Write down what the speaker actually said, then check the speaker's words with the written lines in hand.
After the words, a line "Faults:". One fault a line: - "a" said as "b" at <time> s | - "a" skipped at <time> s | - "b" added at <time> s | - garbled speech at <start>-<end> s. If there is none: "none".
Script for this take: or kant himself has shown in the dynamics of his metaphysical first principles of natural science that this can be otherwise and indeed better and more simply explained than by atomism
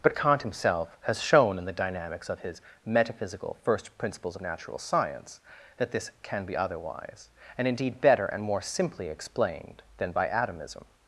but kant himself has shown in the dynamics of his metaphysical first principles of natural science that this can be otherwise and indeed better and more simply explained than by atomism
Faults:
- "or" said as "but" at 0.0 s